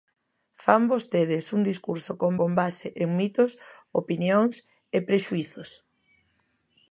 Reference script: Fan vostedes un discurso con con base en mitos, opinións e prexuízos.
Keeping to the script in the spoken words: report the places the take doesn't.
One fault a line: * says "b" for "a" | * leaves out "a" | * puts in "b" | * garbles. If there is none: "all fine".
all fine